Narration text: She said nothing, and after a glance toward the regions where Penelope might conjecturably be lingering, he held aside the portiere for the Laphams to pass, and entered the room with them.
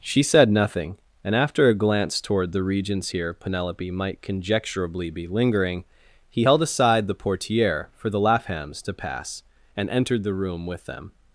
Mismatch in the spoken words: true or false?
true